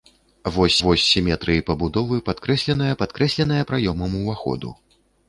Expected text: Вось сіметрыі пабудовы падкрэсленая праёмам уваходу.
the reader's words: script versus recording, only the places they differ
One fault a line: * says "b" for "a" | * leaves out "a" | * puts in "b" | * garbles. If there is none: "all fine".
* puts in "вось"
* puts in "падкрэсленая"